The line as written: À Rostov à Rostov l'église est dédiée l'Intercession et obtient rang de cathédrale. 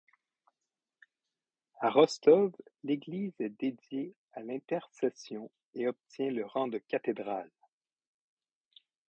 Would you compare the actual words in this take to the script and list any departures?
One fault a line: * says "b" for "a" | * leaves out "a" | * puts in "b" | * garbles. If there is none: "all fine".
* leaves out "à Rostov"
* puts in "à"
* puts in "le"